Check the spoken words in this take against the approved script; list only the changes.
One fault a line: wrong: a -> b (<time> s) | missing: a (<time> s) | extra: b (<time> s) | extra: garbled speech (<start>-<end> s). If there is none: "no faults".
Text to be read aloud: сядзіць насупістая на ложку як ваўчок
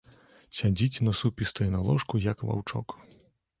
no faults